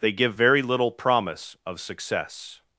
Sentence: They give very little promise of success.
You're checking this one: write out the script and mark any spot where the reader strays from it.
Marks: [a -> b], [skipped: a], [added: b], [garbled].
They give very little promise of success.